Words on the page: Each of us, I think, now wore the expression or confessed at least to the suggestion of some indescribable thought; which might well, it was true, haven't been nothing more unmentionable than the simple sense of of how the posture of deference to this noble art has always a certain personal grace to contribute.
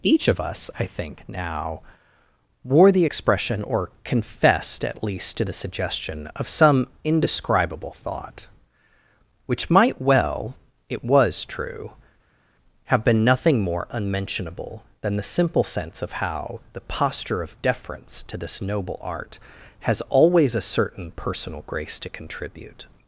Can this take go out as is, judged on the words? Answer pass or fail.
fail